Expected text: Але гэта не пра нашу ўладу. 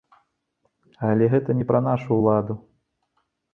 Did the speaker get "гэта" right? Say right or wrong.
right